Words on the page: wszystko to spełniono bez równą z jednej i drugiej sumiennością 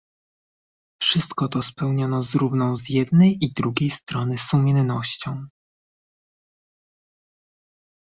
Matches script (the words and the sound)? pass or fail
fail